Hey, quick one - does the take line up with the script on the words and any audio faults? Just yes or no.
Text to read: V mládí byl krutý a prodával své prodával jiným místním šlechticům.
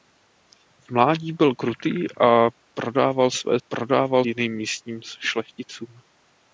yes